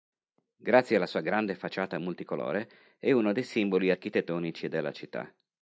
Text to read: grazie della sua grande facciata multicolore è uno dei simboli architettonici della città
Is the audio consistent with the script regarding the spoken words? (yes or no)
no